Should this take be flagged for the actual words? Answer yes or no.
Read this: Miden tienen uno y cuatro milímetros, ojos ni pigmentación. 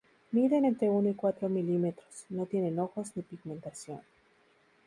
yes